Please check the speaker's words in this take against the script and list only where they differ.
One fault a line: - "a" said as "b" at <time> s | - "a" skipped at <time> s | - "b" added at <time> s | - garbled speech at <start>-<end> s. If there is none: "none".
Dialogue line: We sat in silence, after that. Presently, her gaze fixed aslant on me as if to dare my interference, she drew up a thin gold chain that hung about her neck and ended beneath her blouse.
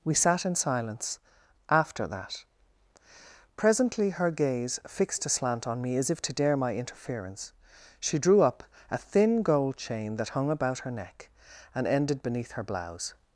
none